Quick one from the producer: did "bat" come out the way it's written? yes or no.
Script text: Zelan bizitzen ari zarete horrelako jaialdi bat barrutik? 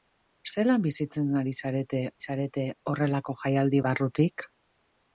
no